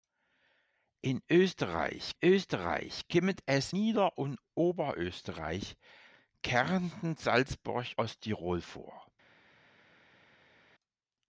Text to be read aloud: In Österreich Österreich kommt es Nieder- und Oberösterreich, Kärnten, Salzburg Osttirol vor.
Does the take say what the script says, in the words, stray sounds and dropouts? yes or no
yes